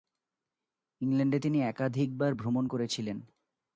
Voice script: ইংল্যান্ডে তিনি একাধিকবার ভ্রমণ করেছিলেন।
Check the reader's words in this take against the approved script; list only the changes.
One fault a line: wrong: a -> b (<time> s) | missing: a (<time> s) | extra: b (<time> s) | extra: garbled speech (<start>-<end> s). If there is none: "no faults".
no faults